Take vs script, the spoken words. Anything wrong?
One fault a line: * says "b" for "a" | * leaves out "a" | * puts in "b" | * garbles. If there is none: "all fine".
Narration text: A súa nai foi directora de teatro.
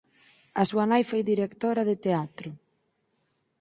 all fine